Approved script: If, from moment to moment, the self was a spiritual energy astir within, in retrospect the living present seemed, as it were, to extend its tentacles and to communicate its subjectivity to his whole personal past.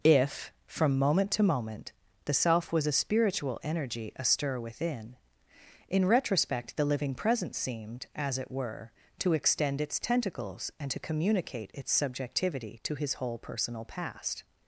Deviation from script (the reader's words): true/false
false